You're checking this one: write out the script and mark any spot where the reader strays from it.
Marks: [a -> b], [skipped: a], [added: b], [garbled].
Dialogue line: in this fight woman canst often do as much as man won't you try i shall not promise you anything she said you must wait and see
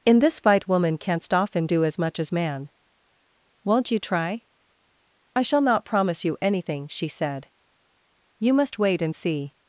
in this fight woman canst often do as much as man won't you try i shall not promise you anything she said you must wait and see